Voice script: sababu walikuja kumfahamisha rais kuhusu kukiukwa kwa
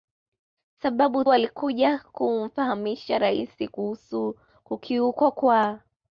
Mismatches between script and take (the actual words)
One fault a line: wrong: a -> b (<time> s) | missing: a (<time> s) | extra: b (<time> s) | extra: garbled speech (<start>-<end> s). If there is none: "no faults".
no faults